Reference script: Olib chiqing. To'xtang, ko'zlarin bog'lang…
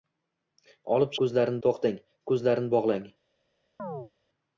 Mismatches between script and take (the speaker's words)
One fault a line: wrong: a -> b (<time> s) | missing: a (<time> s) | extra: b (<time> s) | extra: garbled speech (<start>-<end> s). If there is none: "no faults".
wrong: chiqing -> ko'zlarin (1.2 s)